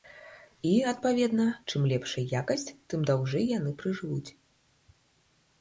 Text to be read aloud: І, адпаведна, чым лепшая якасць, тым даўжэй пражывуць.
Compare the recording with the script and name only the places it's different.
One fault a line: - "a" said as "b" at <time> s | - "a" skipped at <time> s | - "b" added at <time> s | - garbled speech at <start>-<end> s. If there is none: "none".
- "яны" added at 3.6 s